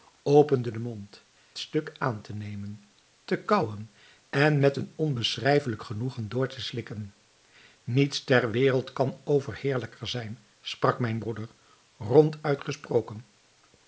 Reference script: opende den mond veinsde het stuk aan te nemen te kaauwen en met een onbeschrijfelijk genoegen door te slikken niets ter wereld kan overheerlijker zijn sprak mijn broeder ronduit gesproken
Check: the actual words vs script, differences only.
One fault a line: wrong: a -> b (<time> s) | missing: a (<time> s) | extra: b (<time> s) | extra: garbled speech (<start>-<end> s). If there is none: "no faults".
missing: veinsde het (1.2 s)